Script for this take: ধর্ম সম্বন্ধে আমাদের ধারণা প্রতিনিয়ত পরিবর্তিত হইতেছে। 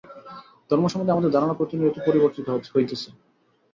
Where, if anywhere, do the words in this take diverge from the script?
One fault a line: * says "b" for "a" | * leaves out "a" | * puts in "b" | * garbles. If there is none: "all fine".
all fine